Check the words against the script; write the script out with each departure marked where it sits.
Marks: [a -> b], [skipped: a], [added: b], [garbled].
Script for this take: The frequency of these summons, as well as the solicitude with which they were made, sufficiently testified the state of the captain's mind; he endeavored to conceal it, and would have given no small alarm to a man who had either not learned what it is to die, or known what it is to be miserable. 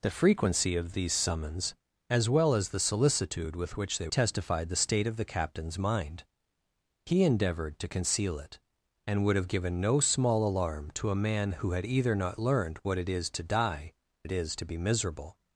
The frequency of these summons, as well as the solicitude with which they [skipped: were made, sufficiently] testified the state of the captain's mind; he endeavored to conceal it, and would have given no small alarm to a man who had either not learned what it is to die, [skipped: or known what] it is to be miserable.